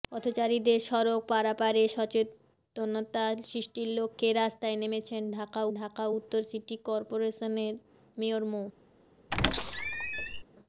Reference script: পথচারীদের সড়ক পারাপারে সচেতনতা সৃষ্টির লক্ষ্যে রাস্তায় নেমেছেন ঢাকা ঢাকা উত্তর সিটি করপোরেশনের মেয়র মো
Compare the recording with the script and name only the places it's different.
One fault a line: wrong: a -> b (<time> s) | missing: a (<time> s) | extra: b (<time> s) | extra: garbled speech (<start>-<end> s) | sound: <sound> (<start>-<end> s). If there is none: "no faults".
sound: squeak (9.3-10.4 s)